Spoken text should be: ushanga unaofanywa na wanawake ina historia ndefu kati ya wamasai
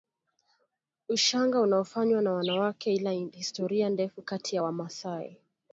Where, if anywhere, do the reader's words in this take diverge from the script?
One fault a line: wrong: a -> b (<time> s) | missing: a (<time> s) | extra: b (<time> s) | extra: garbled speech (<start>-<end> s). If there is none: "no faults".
no faults